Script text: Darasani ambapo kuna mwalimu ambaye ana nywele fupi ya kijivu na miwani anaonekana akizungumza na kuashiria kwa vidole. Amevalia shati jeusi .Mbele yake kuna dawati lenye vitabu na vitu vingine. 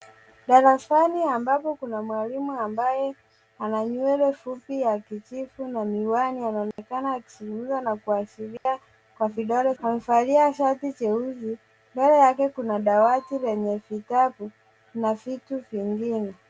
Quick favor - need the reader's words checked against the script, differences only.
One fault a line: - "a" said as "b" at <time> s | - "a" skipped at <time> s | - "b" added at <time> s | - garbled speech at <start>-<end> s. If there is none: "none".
none